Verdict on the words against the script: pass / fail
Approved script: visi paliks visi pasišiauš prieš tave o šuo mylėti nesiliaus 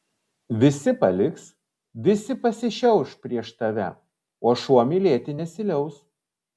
pass